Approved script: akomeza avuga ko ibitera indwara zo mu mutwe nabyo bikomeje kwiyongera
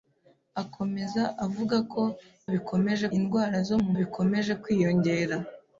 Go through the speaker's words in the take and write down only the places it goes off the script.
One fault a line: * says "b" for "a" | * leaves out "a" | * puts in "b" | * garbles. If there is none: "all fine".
* says "bikomeje" for "ibitera"
* leaves out "mutwe nabyo"